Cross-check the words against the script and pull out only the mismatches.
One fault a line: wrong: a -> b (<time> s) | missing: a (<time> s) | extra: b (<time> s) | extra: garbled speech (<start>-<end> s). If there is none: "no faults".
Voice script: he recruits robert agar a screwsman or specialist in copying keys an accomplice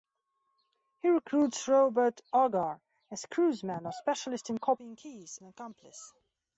no faults